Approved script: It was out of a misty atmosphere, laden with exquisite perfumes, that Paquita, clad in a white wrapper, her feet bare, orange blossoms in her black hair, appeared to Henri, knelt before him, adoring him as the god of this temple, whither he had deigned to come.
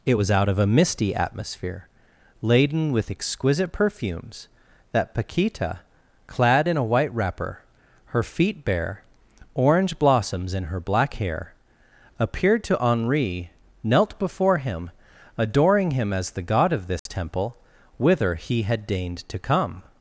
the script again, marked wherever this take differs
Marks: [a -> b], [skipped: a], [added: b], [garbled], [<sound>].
It was out of a misty atmosphere, laden with exquisite perfumes, that Paquita, clad in a white wrapper, her feet bare, orange blossoms in her black hair, appeared to Henri, knelt before him, adoring him as the god of this [dropout] temple, whither he had deigned to come.